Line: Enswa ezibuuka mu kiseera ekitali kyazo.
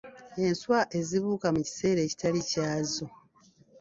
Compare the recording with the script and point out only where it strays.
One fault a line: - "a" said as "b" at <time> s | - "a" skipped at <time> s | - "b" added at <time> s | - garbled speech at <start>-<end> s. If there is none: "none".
none